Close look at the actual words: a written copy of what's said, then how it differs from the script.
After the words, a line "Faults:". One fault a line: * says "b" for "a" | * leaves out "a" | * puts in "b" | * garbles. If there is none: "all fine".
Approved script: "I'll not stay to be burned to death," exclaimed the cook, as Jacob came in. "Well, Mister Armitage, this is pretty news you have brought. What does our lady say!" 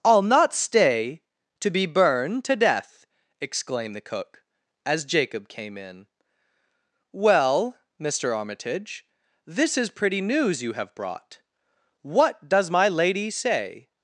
"I'll not stay to be burned to death," exclaimed the cook, as Jacob came in. "Well, Mister Armitage, this is pretty news you have brought. What does my lady say!"
Faults:
* says "my" for "our"